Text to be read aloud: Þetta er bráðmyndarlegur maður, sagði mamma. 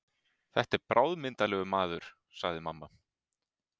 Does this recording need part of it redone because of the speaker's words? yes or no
no